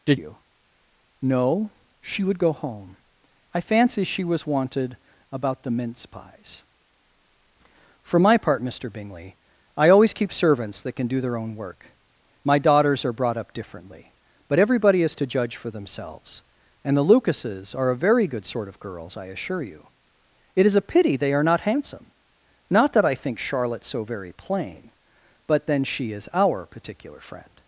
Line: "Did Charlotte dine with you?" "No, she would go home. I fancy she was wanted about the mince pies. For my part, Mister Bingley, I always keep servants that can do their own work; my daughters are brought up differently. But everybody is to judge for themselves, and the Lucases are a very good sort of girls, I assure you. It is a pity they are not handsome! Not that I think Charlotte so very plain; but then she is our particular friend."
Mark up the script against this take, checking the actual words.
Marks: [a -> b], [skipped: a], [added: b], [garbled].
"Did [skipped: Charlotte dine with] you?" "No, she would go home. I fancy she was wanted about the mince pies. For my part, Mister Bingley, I always keep servants that can do their own work; my daughters are brought up differently. But everybody is to judge for themselves, and the Lucases are a very good sort of girls, I assure you. It is a pity they are not handsome! Not that I think Charlotte so very plain; but then she is our particular friend."